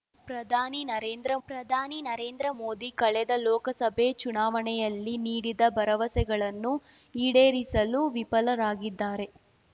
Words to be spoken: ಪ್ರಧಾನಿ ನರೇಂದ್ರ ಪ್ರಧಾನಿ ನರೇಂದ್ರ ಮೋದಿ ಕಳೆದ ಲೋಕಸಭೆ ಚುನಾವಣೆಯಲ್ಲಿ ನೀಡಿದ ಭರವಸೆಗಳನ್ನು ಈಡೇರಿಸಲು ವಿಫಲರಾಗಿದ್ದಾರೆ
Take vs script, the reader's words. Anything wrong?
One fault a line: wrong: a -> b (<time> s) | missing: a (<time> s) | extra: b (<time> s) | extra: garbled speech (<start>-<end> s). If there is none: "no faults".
no faults